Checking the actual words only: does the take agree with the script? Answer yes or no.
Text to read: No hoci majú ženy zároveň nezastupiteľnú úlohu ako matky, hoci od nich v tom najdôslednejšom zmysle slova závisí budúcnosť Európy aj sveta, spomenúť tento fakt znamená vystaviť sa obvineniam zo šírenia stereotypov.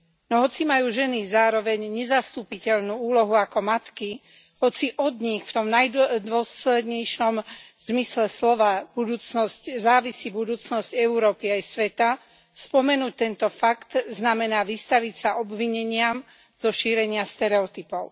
yes